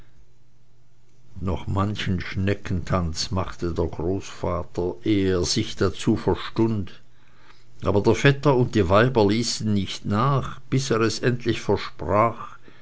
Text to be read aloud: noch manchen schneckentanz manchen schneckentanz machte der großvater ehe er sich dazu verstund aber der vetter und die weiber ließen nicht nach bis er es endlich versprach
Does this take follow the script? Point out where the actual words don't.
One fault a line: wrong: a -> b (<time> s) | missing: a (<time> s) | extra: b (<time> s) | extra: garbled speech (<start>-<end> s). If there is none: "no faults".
missing: manchen schneckentanz (3.3 s)